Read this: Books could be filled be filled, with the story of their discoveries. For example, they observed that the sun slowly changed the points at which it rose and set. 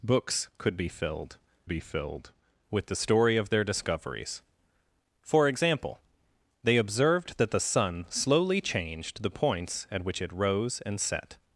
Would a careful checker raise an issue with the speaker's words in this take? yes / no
no